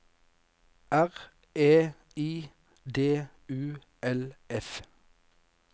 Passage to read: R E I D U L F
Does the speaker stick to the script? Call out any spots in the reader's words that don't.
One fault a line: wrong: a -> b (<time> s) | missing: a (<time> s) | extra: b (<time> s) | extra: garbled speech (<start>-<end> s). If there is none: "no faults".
no faults